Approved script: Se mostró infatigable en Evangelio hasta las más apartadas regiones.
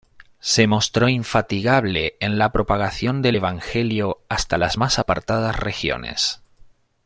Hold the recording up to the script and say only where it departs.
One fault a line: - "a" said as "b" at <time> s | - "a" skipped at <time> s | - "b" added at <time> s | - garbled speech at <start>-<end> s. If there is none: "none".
- "la propagación del" added at 2.4 s